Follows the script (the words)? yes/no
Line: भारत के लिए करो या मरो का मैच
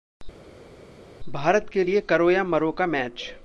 yes